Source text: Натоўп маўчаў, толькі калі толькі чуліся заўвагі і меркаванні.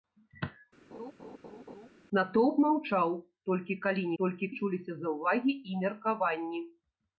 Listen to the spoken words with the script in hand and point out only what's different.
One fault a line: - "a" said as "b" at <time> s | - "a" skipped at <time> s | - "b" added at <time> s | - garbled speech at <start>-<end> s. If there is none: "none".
none